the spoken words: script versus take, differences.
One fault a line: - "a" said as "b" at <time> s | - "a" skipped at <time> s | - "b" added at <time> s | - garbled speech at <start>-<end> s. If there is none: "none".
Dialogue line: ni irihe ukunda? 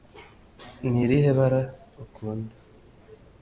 - "bara" added at 1.4 s